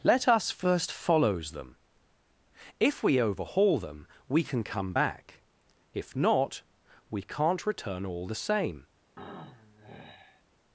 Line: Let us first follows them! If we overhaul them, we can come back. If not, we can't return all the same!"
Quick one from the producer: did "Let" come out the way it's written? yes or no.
yes